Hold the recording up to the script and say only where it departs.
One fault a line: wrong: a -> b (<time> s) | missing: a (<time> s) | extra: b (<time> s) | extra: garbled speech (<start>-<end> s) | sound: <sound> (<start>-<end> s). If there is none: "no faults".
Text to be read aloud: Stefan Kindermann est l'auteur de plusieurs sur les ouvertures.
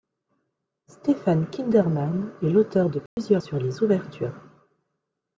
sound: dropout (3.1-3.2 s)